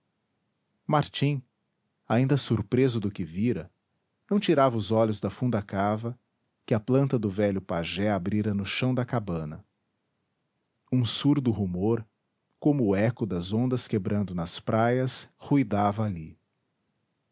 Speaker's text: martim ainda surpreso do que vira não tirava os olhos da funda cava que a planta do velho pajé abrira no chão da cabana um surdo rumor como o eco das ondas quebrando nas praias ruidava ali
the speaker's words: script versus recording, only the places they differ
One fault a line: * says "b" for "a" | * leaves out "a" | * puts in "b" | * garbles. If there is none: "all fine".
all fine